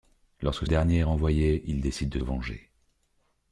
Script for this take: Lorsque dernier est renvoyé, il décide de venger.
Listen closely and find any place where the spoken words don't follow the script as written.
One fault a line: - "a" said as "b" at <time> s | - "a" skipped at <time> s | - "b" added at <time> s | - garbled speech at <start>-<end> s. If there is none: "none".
none